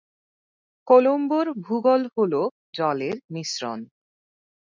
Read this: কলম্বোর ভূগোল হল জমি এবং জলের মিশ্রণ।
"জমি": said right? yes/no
no